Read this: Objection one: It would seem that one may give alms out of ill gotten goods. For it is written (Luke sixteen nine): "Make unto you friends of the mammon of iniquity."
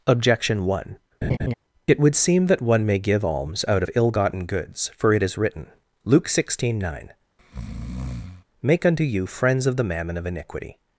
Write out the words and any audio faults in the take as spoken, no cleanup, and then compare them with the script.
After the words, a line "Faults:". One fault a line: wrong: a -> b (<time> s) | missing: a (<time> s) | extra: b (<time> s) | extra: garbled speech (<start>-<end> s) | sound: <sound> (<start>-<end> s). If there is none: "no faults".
Objection one: It would seem that one may give alms out of ill gotten goods. For it is written (Luke sixteen nine): "Make unto you friends of the mammon of iniquity."
Faults:
sound: laugh (1.2-1.5 s)
sound: breath (7.4-8.4 s)